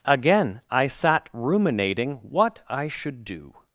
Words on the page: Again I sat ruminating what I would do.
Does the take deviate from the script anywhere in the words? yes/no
yes